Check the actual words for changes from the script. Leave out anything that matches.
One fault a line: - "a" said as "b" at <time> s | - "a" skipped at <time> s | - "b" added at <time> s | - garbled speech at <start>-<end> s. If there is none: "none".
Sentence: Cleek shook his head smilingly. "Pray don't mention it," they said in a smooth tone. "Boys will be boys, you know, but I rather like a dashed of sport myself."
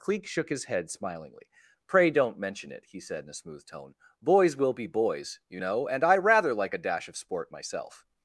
- "they" said as "he" at 2.9 s
- "but" said as "and" at 5.9 s
- "dashed" said as "dash" at 6.8 s